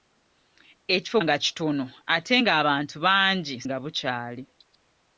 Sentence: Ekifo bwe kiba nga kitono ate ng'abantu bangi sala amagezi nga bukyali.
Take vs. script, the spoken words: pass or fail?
fail